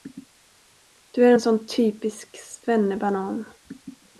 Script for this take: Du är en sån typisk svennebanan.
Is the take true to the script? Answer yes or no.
yes